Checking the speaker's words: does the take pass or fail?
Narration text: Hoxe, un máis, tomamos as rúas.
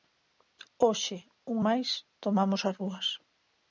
pass